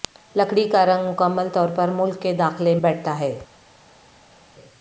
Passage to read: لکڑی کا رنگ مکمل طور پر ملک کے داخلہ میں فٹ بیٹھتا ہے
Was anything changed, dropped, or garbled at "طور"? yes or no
no